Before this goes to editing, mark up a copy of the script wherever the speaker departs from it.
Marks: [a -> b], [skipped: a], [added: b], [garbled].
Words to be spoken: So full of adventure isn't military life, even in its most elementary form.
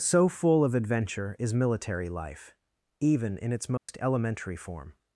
So full of adventure [isn't -> is] military life, even in its most elementary form.